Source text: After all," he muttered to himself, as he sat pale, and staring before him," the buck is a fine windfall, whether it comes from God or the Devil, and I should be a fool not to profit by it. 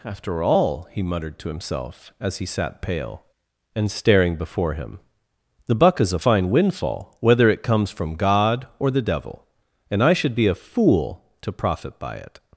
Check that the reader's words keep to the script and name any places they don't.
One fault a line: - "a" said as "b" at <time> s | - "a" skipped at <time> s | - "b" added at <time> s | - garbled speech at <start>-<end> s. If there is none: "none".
- "not" skipped at 11.2 s